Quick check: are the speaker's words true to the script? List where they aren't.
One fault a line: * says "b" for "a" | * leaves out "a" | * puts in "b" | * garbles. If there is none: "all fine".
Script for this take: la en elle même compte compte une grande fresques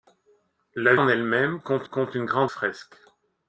all fine